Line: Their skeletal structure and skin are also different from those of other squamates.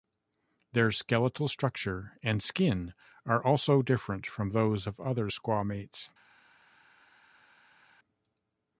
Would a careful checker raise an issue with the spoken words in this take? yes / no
no